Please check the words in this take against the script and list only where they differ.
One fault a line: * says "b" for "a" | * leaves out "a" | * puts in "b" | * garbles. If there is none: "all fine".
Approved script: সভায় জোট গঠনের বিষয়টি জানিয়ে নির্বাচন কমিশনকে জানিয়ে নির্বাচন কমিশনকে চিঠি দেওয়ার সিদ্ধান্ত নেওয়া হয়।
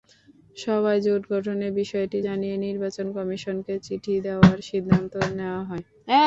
* leaves out "জানিয়ে নির্বাচন কমিশনকে"